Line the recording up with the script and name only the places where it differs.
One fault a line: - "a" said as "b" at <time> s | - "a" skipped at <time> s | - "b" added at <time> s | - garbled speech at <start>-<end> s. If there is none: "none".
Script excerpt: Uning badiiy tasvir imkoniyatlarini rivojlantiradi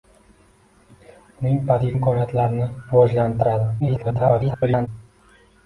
- "tasvir" skipped at 1.9 s
- garbled speech at 3.8-4.9 s